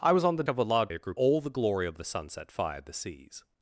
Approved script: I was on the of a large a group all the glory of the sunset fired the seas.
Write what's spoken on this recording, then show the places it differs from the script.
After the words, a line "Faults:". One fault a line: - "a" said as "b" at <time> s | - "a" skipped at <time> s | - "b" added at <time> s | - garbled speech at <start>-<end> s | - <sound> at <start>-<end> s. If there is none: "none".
I was on the of a large a group all the glory of the sunset fired the seas.
Faults:
none